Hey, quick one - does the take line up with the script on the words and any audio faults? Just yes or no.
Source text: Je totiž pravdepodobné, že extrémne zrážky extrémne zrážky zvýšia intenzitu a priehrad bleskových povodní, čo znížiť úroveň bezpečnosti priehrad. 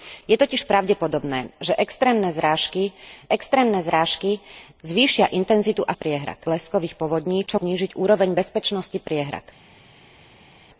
yes